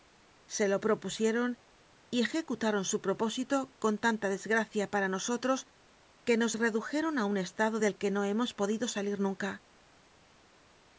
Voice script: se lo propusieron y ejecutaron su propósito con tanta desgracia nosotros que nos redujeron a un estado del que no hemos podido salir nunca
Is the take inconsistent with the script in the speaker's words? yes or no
yes